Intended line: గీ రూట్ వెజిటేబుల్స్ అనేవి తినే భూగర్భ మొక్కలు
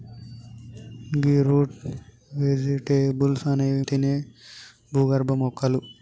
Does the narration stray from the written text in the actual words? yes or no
no